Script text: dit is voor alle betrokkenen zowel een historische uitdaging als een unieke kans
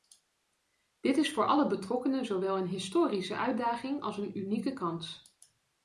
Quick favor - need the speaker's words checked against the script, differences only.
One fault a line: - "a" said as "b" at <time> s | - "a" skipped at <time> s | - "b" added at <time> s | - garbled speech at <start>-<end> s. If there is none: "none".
none